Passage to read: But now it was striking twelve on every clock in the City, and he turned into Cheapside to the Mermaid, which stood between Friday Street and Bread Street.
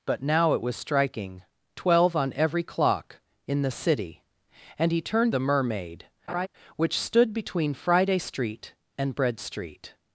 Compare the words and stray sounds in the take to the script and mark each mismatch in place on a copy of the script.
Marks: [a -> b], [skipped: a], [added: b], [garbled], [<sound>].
But now it was striking twelve on every clock in the City, and he turned [skipped: into Cheapside to] the Mermaid, [laugh] which stood between Friday Street and Bread Street.